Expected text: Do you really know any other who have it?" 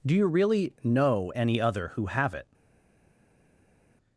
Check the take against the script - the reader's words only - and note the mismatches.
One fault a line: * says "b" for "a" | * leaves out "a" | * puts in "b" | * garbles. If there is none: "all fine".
all fine